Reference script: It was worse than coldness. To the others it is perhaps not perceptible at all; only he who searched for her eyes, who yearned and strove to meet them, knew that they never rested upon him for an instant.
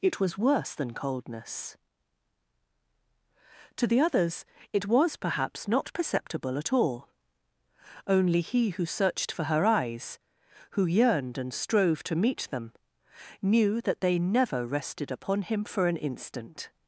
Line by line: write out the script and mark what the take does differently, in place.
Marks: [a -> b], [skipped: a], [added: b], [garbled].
It was worse than coldness. To the others it [is -> was] perhaps not perceptible at all; only he who searched for her eyes, who yearned and strove to meet them, knew that they never rested upon him for an instant.